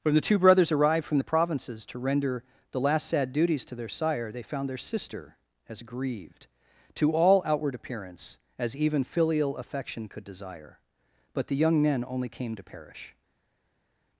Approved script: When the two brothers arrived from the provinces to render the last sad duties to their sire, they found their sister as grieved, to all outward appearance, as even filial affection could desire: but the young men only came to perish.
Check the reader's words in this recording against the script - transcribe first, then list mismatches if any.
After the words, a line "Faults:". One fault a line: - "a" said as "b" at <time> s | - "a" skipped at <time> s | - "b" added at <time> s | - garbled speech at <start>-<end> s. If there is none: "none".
When the two brothers arrived from the provinces to render the last sad duties to their sire, they found their sister as grieved, to all outward appearance, as even filial affection could desire: but the young men only came to perish.
Faults:
none